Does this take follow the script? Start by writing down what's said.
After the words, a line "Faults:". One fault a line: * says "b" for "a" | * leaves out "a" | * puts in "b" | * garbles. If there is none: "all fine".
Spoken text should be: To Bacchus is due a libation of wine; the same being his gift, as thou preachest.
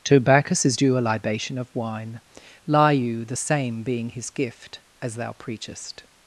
To Bacchus is due a libation of wine; lie you the same being his gift, as thou preachest.
Faults:
* puts in "lie you"